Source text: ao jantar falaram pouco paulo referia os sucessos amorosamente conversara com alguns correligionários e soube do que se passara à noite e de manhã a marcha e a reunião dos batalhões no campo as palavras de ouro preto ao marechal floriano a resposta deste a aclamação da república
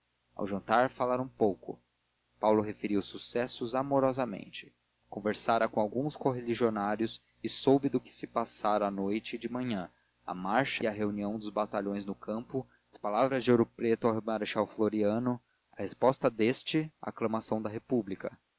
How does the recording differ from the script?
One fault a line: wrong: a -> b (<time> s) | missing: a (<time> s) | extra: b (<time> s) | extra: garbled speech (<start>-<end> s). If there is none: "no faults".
no faults